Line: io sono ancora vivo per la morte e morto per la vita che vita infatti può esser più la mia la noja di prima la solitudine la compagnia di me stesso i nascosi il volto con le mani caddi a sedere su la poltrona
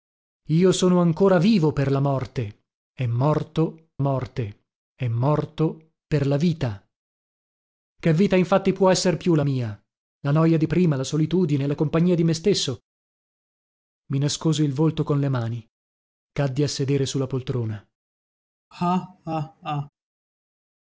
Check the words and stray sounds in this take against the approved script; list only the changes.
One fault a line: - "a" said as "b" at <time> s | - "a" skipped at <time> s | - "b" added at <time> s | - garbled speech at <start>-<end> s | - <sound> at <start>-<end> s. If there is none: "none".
- "morte e morto" added at 4.0 s
- laugh at 18.7-19.9 s